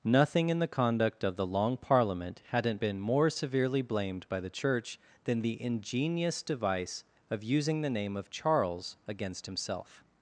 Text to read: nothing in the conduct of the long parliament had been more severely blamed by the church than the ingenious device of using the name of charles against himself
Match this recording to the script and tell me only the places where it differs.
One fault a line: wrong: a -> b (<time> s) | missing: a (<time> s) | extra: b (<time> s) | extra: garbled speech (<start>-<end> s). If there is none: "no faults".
wrong: had -> hadn't (2.5 s)